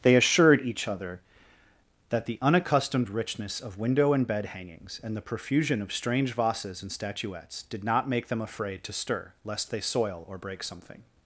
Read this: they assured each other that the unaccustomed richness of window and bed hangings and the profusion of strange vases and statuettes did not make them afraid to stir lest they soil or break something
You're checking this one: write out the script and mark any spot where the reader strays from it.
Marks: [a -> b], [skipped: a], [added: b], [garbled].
they assured each other that the unaccustomed richness of window and bed hangings and the profusion of strange vases and statuettes did not make them afraid to stir lest they soil or break something